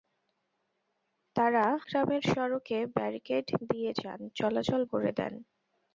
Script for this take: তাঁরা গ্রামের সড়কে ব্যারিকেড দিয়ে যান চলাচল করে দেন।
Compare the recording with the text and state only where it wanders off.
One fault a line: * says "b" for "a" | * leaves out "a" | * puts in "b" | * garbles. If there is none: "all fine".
all fine